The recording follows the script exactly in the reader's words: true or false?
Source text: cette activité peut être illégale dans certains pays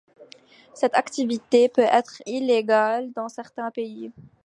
true